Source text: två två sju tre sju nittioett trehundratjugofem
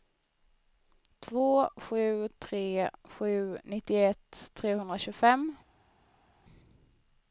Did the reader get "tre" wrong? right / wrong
right